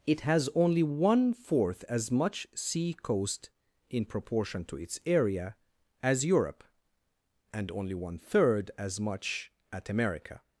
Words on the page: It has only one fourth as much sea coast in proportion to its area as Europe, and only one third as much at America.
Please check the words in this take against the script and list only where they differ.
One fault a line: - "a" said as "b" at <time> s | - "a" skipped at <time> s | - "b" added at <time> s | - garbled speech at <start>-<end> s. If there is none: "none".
none